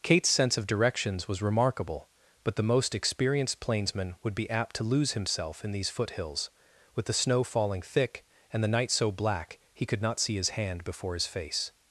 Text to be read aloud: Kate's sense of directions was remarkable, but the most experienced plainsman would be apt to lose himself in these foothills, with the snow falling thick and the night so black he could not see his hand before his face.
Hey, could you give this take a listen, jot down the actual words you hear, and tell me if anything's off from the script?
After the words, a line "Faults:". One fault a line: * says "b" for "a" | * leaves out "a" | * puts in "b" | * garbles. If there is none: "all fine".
Kate's sense of directions was remarkable, but the most experienced plainsman would be apt to lose himself in these foothills, with the snow falling thick and the night so black he could not see his hand before his face.
Faults:
all fine